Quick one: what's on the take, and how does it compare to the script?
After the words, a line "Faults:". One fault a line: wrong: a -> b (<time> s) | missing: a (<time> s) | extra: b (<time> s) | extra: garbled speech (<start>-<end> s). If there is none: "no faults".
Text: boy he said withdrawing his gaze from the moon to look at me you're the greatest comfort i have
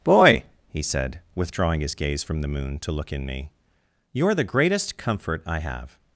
boy he said withdrawing his gaze from the moon to look in me you're the greatest comfort i have
Faults:
wrong: at -> in (3.1 s)